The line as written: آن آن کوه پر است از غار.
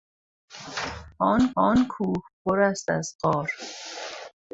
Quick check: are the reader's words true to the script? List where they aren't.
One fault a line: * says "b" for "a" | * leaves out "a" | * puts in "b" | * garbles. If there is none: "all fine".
all fine